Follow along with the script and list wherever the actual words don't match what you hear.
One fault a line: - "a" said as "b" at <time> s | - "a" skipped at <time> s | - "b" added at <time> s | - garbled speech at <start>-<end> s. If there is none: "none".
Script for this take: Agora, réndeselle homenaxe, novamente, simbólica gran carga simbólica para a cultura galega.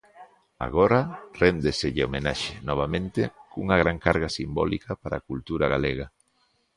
- "simbólica" said as "cunha" at 3.5 s